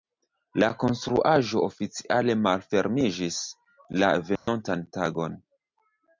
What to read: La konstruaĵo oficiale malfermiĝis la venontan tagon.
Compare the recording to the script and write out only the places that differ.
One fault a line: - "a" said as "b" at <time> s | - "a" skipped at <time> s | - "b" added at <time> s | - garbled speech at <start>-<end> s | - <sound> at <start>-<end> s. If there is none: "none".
- dropout at 4.4-4.5 s